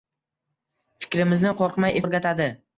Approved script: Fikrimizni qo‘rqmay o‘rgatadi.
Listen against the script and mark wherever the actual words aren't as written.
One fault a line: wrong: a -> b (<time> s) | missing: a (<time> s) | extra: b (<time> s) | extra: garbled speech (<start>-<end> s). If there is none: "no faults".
no faults